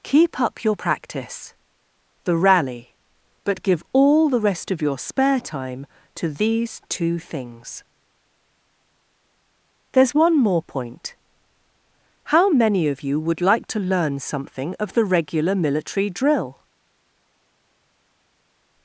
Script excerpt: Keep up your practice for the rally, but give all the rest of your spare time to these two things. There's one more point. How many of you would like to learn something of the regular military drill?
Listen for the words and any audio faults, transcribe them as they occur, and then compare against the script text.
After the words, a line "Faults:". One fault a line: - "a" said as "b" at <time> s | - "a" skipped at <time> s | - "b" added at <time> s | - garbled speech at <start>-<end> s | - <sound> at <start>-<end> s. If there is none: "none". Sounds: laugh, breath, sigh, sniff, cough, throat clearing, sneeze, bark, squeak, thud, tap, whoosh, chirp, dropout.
Keep up your practice the rally, but give all the rest of your spare time to these two things. There's one more point. How many of you would like to learn something of the regular military drill?
Faults:
- "for" skipped at 1.5 s